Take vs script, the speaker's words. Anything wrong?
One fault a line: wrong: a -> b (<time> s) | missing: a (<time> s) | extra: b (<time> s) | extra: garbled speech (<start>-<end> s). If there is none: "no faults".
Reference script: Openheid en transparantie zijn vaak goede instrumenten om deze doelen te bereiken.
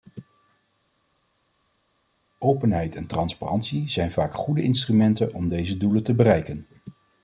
no faults